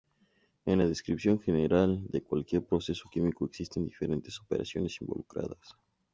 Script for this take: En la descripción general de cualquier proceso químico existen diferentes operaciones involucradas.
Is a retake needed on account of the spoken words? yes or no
no